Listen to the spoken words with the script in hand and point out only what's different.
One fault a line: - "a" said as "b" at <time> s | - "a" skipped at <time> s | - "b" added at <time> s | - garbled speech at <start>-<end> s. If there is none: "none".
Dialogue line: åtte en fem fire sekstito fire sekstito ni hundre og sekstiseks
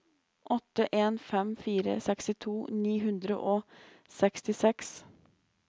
- "fire sekstito" skipped at 2.5 s